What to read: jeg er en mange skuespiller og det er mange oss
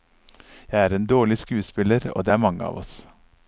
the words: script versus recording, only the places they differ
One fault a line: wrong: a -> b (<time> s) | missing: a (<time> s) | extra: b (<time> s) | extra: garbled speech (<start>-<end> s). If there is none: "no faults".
wrong: mange -> dårlig (1.1 s)
extra: av (2.6 s)